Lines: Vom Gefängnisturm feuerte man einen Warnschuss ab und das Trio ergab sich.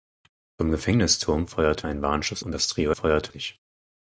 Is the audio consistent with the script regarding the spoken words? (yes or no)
no